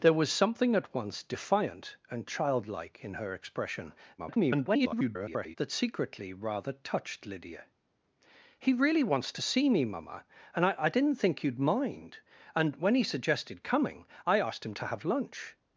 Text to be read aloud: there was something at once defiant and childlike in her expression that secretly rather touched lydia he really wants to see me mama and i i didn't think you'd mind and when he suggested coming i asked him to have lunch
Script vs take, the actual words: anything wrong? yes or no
yes